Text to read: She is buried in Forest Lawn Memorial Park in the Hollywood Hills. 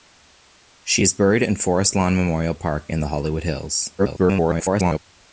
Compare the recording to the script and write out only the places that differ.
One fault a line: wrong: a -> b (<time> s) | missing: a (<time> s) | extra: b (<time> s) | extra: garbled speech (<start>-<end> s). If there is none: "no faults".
extra: garbled speech (4.0-5.0 s)